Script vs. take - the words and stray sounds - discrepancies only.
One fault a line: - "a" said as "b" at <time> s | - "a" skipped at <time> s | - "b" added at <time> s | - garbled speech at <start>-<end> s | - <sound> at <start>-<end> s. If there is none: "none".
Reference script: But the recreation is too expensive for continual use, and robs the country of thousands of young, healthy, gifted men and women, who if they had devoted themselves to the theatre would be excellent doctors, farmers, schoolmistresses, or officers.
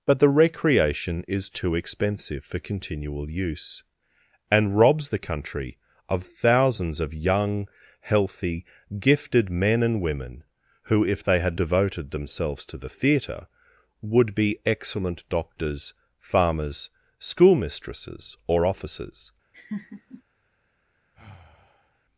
- laugh at 19.5-20.2 s
- sigh at 21.1-22.0 s